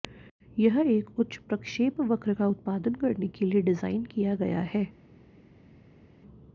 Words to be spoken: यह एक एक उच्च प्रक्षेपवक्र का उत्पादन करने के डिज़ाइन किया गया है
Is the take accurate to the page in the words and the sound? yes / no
no